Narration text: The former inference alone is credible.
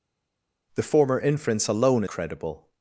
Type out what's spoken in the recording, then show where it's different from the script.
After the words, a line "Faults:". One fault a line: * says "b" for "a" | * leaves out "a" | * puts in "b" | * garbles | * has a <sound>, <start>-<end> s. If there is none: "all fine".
The former inference alone credible.
Faults:
* leaves out "is"